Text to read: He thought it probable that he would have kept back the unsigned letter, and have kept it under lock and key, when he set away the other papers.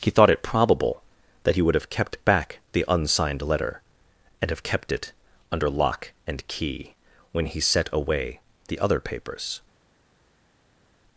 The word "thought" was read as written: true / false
true